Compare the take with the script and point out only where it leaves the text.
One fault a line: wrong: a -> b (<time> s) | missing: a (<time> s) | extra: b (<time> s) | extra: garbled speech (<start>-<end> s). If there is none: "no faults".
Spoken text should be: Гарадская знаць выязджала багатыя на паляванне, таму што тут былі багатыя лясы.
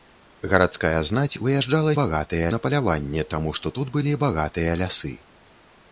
no faults